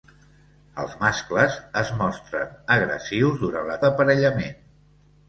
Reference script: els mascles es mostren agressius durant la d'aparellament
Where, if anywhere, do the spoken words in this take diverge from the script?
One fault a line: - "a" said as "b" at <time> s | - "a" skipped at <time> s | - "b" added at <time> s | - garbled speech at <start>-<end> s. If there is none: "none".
none